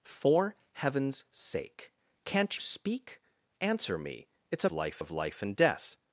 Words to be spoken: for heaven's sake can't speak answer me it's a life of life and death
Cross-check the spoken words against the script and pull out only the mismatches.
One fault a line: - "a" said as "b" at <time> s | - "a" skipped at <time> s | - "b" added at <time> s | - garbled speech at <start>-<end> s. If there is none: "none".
none